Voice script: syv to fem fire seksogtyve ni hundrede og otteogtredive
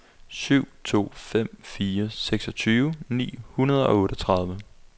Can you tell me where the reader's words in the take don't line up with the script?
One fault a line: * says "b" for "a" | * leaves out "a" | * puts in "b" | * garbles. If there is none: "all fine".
all fine